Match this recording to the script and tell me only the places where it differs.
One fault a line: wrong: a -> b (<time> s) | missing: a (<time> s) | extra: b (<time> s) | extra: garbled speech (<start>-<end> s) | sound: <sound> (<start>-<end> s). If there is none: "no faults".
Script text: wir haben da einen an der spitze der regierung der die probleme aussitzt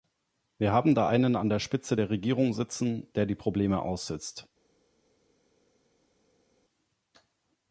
extra: sitzen (2.5 s)